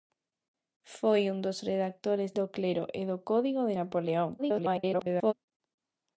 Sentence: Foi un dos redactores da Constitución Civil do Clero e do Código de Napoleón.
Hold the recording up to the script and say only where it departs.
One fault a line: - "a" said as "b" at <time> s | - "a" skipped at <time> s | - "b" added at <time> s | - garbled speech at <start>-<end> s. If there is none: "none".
- "da Constitución Civil" skipped at 2.3 s
- garbled speech at 4.4-5.3 s